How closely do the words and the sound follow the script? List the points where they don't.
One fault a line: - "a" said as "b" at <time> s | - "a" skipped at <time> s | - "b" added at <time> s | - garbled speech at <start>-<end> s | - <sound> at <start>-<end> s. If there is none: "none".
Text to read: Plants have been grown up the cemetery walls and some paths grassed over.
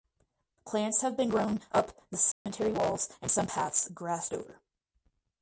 - dropout at 2.3-2.5 s